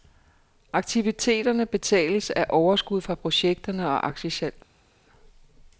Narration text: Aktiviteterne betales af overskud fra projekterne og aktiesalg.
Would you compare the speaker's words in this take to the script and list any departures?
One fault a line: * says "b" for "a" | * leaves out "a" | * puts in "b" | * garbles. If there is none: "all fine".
all fine